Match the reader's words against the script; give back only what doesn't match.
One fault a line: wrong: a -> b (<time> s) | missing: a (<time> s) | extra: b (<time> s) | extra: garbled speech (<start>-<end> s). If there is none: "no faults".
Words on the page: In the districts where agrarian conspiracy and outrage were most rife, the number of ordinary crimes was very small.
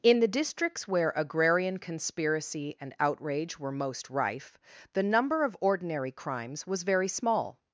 no faults